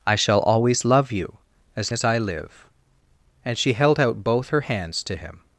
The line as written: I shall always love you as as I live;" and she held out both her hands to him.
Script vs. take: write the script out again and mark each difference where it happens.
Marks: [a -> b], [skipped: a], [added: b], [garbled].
I shall always love you as as I live;" and she held out both her hands to him.